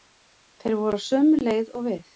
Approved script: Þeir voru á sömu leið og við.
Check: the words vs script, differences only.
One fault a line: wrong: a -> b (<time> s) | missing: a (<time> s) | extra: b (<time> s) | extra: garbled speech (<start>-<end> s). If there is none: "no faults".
no faults